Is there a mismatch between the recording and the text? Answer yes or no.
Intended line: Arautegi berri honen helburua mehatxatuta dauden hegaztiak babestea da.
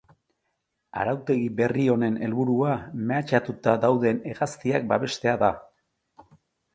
no